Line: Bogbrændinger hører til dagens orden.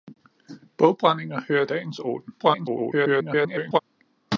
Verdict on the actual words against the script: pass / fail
fail